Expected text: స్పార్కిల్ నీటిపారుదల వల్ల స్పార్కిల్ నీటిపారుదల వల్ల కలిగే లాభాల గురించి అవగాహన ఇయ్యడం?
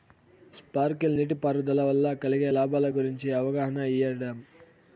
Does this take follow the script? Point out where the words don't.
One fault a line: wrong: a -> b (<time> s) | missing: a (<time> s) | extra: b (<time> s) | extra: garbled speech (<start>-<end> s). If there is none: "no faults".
missing: స్పార్కిల్ నీటిపారుదల వల్ల (2.1 s)